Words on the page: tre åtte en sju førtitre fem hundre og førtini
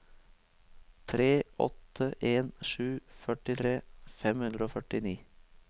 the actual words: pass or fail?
pass